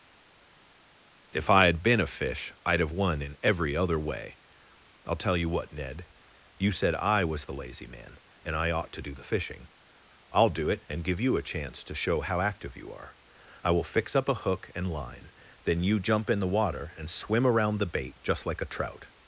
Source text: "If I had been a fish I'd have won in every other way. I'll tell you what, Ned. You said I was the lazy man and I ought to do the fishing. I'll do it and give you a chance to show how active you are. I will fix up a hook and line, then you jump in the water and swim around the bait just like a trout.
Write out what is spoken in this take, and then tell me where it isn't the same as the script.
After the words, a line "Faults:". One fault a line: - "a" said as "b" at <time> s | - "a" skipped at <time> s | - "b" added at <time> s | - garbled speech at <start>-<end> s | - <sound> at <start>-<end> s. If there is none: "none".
"If I had been a fish I'd have won in every other way. I'll tell you what, Ned. You said I was the lazy man and I ought to do the fishing. I'll do it and give you a chance to show how active you are. I will fix up a hook and line, then you jump in the water and swim around the bait just like a trout.
Faults:
none